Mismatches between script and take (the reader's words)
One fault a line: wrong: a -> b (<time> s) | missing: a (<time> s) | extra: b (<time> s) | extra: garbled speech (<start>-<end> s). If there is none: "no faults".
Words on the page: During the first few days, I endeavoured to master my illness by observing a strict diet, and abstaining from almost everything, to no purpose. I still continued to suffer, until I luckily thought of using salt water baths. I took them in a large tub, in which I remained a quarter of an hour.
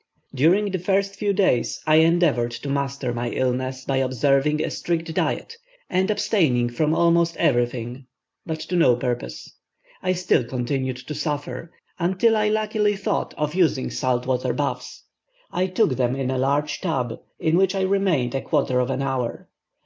extra: but (8.5 s)